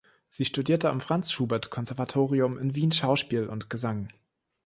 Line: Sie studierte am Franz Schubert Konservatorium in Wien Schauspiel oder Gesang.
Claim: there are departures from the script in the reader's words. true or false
true